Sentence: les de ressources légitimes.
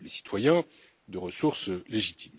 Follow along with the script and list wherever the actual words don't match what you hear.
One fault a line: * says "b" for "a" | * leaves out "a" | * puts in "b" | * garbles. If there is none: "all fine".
* puts in "citoyens"